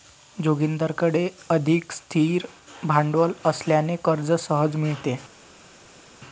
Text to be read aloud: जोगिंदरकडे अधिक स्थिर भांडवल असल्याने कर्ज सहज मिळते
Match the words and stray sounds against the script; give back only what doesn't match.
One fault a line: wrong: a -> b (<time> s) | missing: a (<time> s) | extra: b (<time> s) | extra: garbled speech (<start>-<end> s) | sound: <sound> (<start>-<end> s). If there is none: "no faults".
no faults